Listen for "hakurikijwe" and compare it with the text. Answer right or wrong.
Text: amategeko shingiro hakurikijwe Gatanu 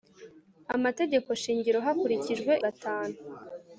right